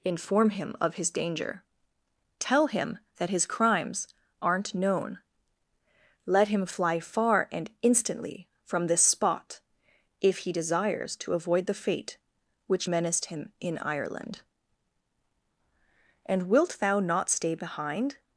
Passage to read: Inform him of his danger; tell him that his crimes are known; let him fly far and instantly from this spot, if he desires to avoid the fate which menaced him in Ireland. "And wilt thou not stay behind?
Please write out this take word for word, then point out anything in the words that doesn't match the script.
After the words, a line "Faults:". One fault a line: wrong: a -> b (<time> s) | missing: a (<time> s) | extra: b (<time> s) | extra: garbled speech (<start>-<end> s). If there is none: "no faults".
Inform him of his danger; tell him that his crimes aren't known; let him fly far and instantly from this spot, if he desires to avoid the fate which menaced him in Ireland. "And wilt thou not stay behind?
Faults:
wrong: are -> aren't (4.4 s)